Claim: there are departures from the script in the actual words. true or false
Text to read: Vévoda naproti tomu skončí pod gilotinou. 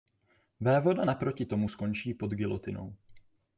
false